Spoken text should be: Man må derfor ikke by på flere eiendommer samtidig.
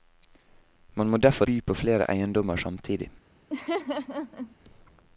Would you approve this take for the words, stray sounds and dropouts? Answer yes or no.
no